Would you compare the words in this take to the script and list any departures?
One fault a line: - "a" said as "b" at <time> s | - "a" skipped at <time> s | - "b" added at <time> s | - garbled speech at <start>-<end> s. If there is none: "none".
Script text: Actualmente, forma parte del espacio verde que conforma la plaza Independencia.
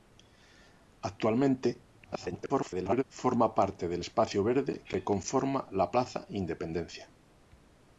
- garbled speech at 2.0-3.0 s